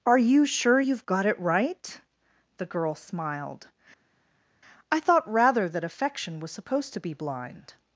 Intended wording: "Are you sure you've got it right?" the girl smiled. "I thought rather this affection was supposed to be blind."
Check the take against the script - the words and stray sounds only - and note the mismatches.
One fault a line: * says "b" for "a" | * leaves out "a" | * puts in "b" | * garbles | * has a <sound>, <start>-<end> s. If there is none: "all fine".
* says "that" for "this"